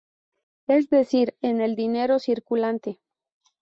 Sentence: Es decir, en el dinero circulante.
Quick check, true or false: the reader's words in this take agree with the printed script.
true